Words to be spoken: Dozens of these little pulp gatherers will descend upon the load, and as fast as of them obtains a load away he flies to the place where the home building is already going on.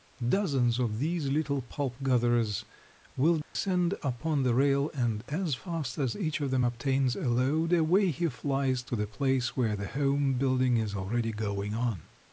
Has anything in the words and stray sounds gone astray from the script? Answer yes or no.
yes